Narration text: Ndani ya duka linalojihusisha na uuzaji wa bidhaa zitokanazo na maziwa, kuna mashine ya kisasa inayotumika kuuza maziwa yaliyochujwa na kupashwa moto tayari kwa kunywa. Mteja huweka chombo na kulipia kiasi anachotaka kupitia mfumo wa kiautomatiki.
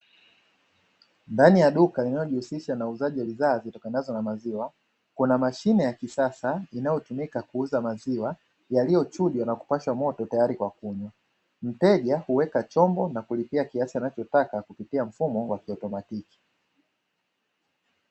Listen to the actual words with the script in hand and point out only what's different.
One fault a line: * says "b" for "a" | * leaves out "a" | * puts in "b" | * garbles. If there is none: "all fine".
all fine